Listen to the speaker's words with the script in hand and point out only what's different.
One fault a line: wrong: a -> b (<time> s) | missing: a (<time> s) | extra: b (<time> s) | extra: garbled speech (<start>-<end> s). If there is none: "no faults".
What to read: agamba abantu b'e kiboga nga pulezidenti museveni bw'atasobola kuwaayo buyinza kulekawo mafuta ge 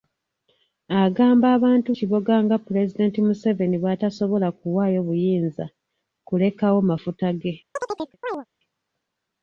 missing: b'e (1.9 s)